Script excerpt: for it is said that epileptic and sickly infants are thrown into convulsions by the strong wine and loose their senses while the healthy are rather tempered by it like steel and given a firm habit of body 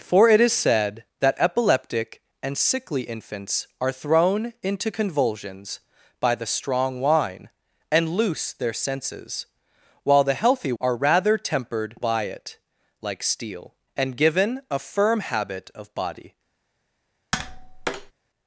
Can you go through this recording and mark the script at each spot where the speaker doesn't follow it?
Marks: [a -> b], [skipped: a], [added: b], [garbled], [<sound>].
for it is said that epileptic and sickly infants are thrown into convulsions by the strong wine and loose their senses while the healthy are rather tempered by it like steel and given a firm habit of body [tap]